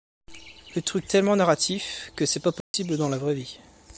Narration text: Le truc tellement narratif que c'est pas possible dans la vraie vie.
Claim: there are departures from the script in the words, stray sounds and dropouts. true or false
true